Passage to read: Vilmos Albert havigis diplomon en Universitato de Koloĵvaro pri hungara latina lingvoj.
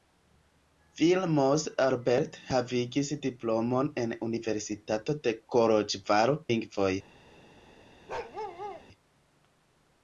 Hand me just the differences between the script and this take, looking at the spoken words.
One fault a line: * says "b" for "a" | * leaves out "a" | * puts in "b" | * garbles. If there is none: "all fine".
* leaves out "pri hungara latina"